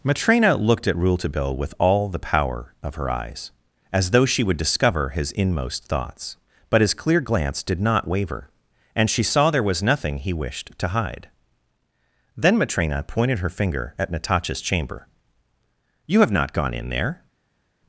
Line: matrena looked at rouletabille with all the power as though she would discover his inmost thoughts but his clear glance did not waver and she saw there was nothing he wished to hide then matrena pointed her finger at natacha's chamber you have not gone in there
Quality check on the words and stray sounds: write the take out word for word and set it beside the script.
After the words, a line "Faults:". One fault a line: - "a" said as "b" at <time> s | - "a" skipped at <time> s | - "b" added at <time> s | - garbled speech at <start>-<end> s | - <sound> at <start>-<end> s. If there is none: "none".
matrena looked at rouletabille with all the power of her eyes as though she would discover his inmost thoughts but his clear glance did not waver and she saw there was nothing he wished to hide then matrena pointed her finger at natacha's chamber you have not gone in there
Faults:
- "of her eyes" added at 2.8 s